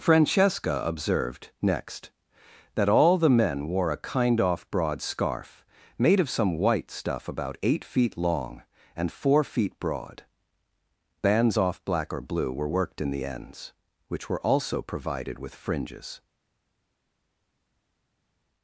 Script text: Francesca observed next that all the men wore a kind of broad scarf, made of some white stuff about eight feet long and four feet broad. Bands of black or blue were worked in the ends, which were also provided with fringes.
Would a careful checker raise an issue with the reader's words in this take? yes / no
yes